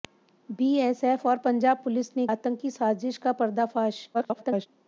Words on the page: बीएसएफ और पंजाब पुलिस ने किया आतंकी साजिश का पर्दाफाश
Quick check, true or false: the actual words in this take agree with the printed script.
false